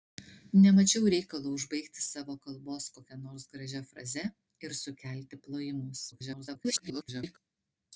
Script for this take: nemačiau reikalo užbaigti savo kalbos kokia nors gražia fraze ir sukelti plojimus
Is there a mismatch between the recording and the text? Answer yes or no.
yes